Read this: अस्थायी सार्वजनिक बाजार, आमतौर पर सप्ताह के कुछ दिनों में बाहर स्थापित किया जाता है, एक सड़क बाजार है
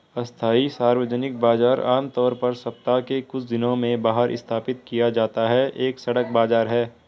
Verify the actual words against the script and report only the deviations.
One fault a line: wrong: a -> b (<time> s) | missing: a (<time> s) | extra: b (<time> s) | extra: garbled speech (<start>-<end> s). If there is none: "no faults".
no faults